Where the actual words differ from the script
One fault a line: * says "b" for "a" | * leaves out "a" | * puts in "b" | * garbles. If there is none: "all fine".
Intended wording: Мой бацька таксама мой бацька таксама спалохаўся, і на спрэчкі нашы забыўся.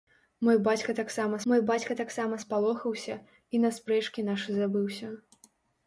all fine